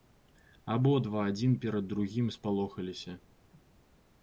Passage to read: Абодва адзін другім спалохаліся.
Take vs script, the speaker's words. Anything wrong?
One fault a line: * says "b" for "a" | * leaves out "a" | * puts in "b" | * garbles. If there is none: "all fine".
* puts in "перад"